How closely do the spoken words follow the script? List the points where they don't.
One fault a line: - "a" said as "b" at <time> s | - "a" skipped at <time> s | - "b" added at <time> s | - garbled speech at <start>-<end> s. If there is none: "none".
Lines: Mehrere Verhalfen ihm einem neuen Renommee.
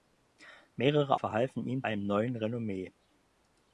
none